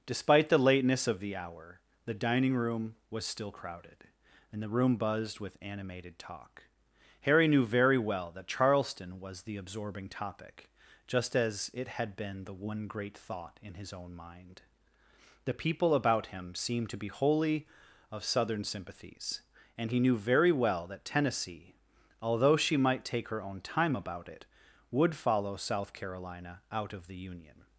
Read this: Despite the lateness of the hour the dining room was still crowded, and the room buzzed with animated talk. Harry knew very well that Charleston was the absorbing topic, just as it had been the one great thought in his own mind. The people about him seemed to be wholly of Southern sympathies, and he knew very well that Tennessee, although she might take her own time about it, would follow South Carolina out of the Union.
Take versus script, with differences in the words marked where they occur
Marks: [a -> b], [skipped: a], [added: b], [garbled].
Despite the lateness of the hour the dining room was still crowded, and the room buzzed with animated talk. Harry knew very well that Charleston was the absorbing topic, just as it had been the one great thought in his own mind. The people about him seemed to be wholly of Southern sympathies, and he knew very well that Tennessee, although she might take her own time about it, would follow South Carolina out of the Union.